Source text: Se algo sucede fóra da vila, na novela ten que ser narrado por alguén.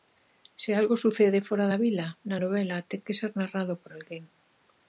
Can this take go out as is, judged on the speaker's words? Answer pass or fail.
pass